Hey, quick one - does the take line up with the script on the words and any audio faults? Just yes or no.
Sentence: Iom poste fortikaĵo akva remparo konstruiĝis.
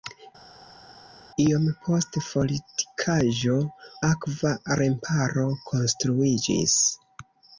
yes